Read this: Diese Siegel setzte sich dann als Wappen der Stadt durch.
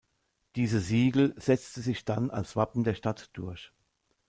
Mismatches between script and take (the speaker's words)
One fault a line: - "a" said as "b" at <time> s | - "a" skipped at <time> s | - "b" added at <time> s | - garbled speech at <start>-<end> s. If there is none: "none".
none